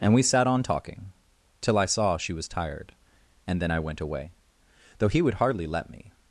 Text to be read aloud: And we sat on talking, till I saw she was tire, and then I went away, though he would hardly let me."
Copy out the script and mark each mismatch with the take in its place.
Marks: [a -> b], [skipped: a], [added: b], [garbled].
And we sat on talking, till I saw she was [tire, -> tired] and then I went away, though he would hardly let me."